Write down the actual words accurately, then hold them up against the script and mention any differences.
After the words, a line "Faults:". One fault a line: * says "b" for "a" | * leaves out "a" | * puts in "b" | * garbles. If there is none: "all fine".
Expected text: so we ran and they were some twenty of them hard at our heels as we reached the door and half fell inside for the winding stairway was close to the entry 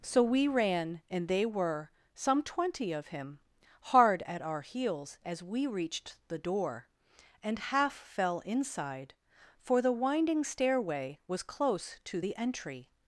so we ran and they were some twenty of him hard at our heels as we reached the door and half fell inside for the winding stairway was close to the entry
Faults:
* says "him" for "them"